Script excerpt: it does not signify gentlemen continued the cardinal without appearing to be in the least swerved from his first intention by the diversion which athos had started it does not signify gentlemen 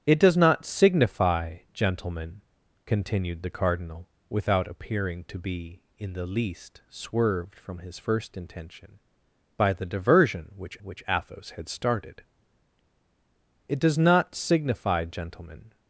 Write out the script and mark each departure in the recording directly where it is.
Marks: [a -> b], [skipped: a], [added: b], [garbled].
it does not signify gentlemen continued the cardinal without appearing to be in the least swerved from his first intention by the diversion which [added: which] athos had started it does not signify gentlemen